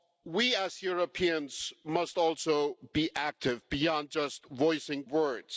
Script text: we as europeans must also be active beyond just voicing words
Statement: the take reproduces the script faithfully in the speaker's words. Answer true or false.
true